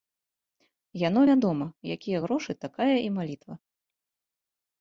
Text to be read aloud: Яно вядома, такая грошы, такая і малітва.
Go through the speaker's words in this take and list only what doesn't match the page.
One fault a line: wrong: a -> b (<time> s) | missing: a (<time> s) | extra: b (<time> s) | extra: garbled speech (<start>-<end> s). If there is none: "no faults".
wrong: такая -> якія (1.9 s)